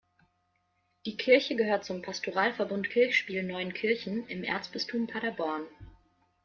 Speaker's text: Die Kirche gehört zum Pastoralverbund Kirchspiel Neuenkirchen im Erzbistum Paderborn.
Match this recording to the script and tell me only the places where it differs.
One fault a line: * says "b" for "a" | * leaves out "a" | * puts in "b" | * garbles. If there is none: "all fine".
all fine